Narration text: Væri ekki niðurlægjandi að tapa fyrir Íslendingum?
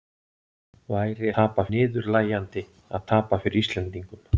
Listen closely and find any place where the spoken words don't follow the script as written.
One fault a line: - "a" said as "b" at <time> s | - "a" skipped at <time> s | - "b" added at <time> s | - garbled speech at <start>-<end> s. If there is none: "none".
- "ekki" said as "tapa" at 1.4 s